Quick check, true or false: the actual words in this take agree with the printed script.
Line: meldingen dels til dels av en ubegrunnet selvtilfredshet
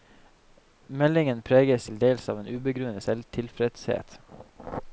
false